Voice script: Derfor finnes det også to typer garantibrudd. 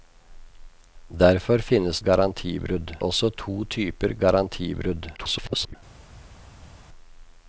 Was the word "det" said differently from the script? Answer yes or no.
yes